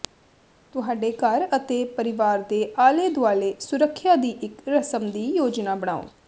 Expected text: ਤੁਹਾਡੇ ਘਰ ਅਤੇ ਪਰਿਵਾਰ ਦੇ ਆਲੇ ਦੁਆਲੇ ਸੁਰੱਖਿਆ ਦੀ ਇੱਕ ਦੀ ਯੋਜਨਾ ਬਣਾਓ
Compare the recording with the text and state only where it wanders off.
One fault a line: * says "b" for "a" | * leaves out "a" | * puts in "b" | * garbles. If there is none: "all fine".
* puts in "ਰਸਮ"